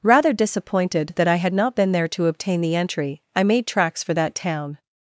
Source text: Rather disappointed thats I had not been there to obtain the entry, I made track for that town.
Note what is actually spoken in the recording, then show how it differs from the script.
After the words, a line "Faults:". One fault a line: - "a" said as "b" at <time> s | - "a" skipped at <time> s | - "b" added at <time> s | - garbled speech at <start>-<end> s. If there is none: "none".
Rather disappointed that I had not been there to obtain the entry, I made tracks for that town.
Faults:
- "thats" said as "that" at 1.1 s
- "track" said as "tracks" at 3.7 s